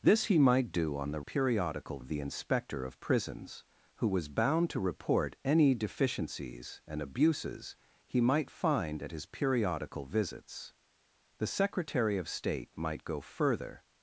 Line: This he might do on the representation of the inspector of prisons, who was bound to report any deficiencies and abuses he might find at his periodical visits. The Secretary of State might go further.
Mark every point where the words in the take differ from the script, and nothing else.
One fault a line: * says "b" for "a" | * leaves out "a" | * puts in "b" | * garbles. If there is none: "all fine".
* says "periodical" for "representation"